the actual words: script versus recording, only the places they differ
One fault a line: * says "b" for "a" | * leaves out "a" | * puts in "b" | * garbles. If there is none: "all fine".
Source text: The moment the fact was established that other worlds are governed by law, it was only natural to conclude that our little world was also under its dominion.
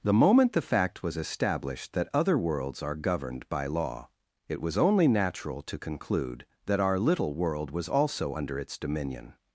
all fine